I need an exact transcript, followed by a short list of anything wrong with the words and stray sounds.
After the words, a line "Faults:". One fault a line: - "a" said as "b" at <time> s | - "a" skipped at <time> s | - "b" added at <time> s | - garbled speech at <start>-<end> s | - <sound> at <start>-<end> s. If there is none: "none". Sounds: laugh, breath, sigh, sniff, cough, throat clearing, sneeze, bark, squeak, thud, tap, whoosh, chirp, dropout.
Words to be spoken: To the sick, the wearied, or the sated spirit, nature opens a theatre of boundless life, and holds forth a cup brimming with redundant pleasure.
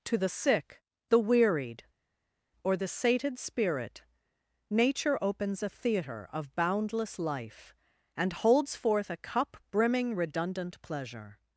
To the sick, the wearied, or the sated spirit, nature opens a theatre of boundless life, and holds forth a cup brimming redundant pleasure.
Faults:
- "with" skipped at 10.1 s